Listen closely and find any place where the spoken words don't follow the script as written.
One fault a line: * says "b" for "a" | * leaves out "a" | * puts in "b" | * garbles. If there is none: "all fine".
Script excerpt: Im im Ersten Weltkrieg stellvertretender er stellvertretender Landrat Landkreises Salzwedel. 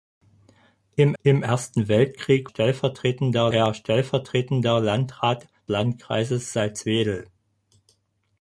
all fine